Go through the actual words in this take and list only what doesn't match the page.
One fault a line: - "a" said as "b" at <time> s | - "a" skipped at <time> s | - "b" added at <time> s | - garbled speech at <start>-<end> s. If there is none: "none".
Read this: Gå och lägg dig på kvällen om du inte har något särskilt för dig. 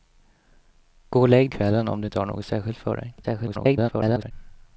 - "dig på" skipped at 1.5 s
- garbled speech at 3.2-4.3 s